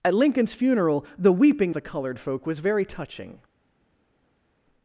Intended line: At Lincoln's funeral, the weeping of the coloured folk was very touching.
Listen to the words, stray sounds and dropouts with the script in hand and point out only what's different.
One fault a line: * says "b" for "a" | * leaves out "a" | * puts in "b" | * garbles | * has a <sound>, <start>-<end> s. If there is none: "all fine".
* leaves out "of"